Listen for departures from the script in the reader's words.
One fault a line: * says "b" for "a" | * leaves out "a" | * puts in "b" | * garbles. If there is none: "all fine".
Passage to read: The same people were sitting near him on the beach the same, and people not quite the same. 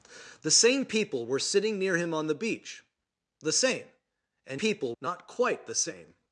all fine